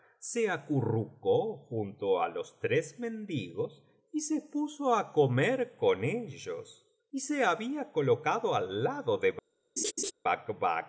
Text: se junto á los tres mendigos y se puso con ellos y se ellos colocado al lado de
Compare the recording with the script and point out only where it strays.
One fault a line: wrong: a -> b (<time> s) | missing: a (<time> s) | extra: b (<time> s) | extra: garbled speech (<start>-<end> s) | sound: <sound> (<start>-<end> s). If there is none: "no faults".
extra: acurrucó (0.5 s)
extra: á comer (4.9 s)
wrong: ellos -> había (7.4 s)
sound: laugh (9.8-10.1 s)